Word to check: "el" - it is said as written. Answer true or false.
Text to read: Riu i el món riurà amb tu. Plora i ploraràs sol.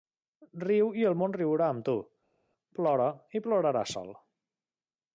true